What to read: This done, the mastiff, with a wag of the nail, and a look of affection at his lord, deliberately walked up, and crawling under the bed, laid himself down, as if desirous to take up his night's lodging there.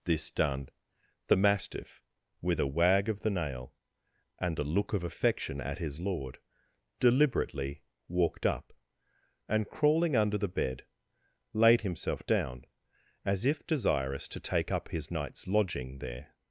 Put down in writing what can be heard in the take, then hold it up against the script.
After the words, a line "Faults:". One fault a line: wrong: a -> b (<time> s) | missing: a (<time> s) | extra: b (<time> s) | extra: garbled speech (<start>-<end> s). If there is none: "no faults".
This done, the mastiff, with a wag of the nail, and a look of affection at his lord, deliberately walked up, and crawling under the bed, laid himself down, as if desirous to take up his night's lodging there.
Faults:
no faults